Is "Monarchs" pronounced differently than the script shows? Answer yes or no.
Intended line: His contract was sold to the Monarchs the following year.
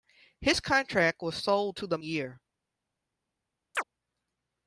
yes